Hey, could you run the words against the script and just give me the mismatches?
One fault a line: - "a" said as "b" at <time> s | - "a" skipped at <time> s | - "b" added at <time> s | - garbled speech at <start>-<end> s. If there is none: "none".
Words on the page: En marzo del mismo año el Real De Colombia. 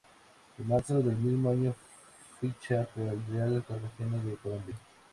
- "ficha por" added at 2.4 s
- "Cartagena" added at 3.7 s